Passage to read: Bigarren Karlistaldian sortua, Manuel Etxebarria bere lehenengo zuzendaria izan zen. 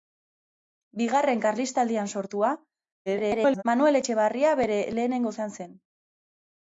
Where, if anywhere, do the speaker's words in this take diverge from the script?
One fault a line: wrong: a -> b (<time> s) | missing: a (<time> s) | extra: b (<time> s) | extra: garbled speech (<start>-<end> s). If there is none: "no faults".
extra: garbled speech (3.1-3.6 s)
missing: zuzendaria (5.3 s)